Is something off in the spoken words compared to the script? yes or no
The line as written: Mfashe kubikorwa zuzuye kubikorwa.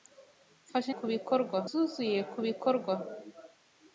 no